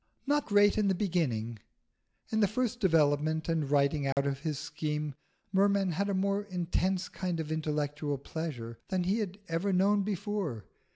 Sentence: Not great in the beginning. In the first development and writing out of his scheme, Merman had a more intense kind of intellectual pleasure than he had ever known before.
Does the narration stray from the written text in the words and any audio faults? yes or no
yes